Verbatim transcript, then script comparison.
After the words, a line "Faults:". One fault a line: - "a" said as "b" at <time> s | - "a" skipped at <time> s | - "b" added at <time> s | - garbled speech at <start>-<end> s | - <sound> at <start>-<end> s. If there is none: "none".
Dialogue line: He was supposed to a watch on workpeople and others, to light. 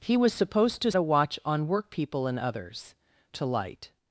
He was supposed to a watch on workpeople and others, to light.
Faults:
none